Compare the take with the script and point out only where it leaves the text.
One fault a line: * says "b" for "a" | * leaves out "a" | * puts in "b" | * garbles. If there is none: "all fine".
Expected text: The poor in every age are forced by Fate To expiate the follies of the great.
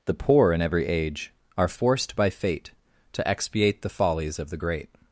all fine